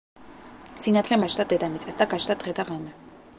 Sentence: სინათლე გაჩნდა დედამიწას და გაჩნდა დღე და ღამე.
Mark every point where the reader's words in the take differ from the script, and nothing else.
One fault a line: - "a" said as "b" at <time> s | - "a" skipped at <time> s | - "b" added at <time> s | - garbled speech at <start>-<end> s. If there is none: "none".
none